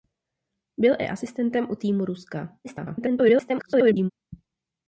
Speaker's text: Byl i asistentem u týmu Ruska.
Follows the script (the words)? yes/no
no